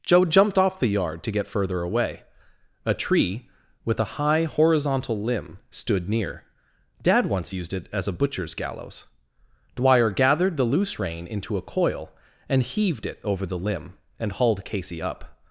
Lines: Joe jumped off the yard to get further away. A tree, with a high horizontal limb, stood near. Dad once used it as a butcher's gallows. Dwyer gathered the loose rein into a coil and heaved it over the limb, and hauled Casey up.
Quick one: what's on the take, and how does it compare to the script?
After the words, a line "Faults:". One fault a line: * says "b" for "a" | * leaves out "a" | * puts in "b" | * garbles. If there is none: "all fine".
Joe jumped off the yard to get further away. A tree, with a high horizontal limb, stood near. Dad once used it as a butcher's gallows. Dwyer gathered the loose rein into a coil and heaved it over the limb, and hauled Casey up.
Faults:
all fine